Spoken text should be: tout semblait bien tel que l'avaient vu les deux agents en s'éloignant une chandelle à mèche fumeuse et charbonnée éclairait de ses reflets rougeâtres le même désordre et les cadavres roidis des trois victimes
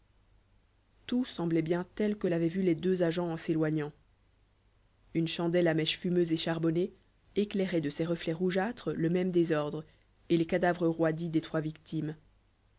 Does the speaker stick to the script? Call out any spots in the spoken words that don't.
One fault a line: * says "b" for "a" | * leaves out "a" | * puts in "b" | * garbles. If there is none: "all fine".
all fine